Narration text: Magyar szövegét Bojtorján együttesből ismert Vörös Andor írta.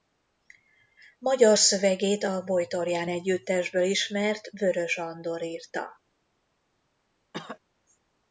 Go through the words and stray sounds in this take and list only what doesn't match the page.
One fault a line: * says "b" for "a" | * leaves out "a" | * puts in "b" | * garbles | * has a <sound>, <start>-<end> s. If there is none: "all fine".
* puts in "a"
* has a cough, 7.3-7.6 s